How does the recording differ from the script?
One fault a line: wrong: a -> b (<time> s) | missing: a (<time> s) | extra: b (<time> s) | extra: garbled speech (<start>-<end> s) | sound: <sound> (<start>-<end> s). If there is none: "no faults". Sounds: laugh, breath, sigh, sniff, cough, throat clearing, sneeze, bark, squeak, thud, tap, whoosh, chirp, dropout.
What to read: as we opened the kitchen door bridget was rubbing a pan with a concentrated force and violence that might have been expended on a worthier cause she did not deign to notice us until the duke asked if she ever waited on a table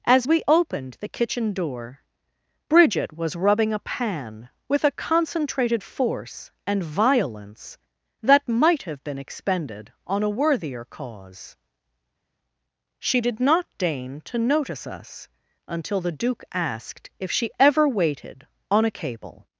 wrong: table -> cable (18.9 s)